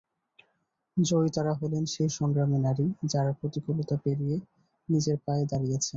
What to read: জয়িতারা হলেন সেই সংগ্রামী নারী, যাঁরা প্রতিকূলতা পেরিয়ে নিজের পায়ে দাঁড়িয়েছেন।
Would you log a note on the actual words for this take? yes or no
no